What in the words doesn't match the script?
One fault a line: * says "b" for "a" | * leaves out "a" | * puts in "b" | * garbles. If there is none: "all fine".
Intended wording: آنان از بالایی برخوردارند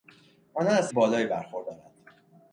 all fine